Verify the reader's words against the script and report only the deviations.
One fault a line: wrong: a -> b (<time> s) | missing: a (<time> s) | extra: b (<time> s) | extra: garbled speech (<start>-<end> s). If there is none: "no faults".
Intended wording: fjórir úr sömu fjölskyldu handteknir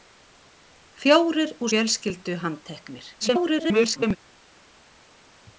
missing: sömu (1.7 s)
extra: garbled speech (3.2-4.2 s)